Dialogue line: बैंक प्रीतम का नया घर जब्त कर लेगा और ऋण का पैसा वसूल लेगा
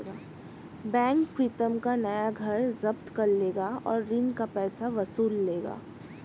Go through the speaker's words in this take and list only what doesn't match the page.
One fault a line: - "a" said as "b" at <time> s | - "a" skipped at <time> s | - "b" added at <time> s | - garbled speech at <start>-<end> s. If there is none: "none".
none